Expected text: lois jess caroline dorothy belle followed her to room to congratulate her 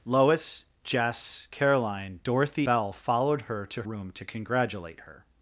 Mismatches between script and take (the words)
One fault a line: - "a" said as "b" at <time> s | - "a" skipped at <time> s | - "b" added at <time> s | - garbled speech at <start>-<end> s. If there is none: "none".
none